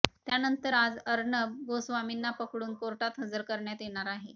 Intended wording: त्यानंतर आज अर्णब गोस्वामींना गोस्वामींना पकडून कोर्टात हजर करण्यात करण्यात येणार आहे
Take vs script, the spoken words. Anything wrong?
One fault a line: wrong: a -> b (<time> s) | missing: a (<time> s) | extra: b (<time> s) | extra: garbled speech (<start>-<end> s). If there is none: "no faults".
missing: गोस्वामींना (2.3 s)
missing: करण्यात (3.8 s)